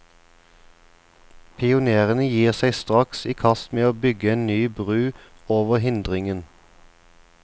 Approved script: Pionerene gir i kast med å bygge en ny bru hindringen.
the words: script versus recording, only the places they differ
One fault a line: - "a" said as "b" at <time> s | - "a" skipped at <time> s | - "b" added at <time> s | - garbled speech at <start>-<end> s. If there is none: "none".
- "seg straks" added at 2.6 s
- "over" added at 5.6 s